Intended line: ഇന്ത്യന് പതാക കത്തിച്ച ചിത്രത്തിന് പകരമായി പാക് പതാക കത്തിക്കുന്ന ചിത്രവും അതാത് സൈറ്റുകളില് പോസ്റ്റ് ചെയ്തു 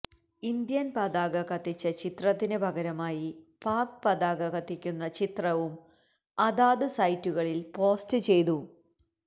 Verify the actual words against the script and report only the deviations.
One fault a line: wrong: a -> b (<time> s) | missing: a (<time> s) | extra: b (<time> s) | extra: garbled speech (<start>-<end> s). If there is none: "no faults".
no faults